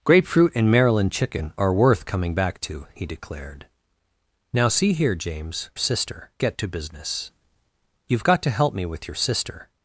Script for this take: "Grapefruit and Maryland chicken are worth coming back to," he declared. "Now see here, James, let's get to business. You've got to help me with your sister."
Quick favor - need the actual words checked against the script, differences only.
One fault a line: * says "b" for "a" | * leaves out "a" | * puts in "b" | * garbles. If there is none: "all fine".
* says "sister" for "let's"